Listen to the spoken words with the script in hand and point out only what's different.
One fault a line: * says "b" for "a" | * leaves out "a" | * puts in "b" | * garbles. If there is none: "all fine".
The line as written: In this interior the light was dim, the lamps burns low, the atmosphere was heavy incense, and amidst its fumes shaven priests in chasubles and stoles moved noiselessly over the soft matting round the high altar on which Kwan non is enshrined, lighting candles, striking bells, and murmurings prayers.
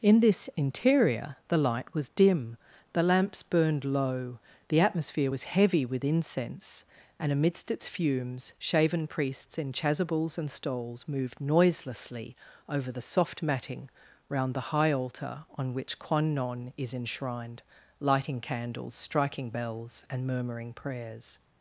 * says "burned" for "burns"
* puts in "with"
* says "murmuring" for "murmurings"